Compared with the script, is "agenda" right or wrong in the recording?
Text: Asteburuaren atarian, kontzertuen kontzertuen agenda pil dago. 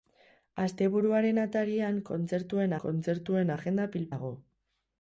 right